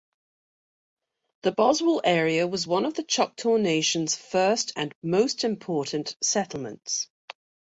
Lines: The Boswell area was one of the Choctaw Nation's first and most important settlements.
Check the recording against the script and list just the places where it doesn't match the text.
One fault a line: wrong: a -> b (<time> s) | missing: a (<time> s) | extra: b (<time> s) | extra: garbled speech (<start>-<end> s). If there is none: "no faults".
no faults